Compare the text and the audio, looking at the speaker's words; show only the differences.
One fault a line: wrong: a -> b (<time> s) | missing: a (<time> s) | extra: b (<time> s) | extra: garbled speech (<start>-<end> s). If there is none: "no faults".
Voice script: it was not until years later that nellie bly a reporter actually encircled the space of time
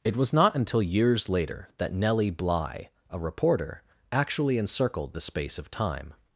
no faults